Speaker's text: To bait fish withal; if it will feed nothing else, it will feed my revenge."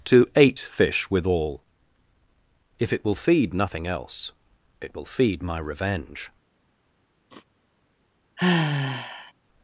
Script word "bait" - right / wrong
wrong